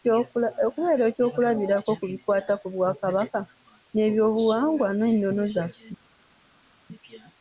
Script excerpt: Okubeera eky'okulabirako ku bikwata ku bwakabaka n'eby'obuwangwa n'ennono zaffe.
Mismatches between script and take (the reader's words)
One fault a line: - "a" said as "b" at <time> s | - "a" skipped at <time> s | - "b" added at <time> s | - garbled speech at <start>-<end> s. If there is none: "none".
none